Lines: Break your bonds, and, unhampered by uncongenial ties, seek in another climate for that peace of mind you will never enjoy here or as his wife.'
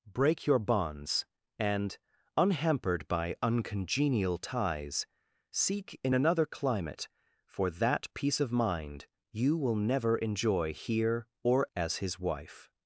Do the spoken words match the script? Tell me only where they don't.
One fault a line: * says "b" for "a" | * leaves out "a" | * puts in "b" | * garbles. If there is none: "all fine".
all fine